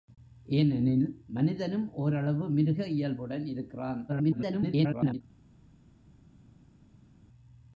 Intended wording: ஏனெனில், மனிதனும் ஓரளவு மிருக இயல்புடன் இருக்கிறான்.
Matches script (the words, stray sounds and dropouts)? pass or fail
fail